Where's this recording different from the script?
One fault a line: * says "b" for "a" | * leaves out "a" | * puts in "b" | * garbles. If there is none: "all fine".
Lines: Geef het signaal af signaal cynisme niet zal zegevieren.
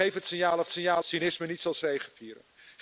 all fine